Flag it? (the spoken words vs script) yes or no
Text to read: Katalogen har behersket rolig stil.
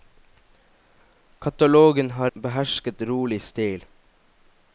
no